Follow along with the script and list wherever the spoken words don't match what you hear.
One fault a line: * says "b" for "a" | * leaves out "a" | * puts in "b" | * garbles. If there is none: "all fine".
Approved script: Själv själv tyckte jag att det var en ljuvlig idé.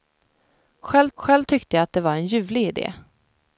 all fine